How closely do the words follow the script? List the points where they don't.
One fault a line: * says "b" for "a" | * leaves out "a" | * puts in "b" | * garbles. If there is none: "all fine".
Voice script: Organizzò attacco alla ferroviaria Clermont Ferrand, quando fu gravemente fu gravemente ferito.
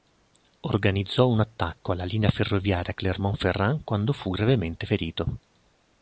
* puts in "un"
* puts in "linea"
* leaves out "fu gravemente"